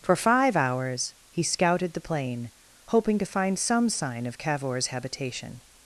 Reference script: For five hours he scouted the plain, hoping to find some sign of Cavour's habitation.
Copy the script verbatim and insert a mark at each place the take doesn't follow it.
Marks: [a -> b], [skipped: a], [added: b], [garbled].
For five hours he scouted the plain, hoping to find some sign of Cavour's habitation.